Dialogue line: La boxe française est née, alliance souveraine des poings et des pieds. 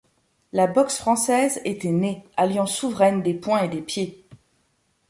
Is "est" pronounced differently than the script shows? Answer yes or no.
yes